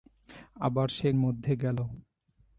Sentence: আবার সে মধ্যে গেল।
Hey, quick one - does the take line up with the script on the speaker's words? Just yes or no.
yes